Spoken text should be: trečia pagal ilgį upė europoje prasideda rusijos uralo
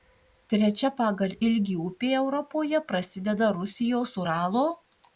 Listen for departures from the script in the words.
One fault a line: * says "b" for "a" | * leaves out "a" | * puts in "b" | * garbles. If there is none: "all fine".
all fine